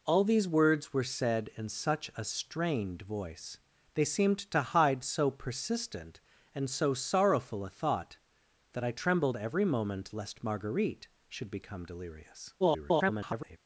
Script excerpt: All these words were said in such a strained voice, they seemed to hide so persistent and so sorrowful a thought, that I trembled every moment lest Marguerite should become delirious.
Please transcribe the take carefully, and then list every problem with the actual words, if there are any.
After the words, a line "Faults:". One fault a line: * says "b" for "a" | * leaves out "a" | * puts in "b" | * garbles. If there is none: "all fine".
All these words were said in such a strained voice, they seemed to hide so persistent and so sorrowful a thought, that I trembled every moment lest Marguerite should become delirious. [garbled]
Faults:
* garbles